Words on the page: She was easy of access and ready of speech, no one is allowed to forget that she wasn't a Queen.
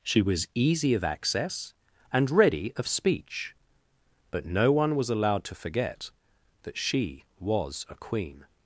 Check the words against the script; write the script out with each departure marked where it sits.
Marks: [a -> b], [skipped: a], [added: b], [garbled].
She was easy of access and ready of speech, [added: but] no one [is -> was] allowed to forget that she [wasn't -> was] a Queen.